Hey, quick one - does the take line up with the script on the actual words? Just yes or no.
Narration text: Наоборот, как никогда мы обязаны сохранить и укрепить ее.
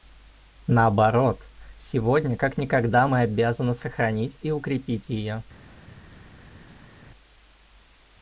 no